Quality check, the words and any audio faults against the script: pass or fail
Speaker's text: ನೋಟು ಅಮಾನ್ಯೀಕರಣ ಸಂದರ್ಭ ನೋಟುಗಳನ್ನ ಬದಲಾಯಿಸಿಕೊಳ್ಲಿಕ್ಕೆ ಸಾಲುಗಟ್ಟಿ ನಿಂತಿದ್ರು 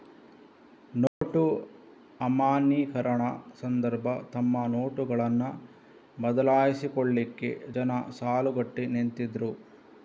fail